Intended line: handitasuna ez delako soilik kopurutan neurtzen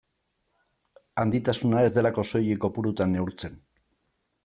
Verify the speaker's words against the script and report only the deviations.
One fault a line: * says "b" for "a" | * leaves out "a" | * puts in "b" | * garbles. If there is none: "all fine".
all fine